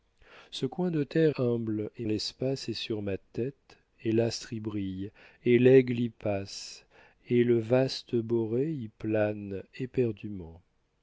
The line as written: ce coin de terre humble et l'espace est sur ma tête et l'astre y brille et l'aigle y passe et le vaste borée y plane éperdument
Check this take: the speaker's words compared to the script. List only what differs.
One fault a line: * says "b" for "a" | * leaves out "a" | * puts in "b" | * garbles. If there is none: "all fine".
all fine